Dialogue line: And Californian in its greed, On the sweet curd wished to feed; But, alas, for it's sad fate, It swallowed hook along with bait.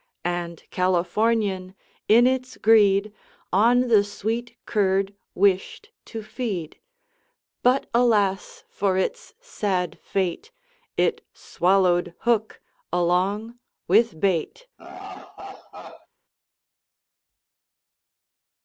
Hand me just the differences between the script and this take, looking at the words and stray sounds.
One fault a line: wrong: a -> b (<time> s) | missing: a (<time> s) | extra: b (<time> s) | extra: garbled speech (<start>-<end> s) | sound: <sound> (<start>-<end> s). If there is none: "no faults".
sound: laugh (14.8-16.1 s)